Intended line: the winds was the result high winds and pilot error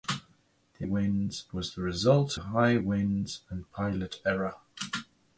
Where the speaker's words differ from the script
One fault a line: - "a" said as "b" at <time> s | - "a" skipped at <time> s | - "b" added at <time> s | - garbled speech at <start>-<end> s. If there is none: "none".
none